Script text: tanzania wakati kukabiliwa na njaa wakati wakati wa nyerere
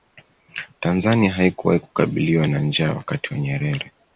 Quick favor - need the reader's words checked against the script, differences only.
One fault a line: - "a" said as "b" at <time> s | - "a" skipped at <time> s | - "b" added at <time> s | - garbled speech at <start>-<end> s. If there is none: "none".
- "wakati" said as "haikuwahi" at 1.3 s
- "wakati" skipped at 3.3 s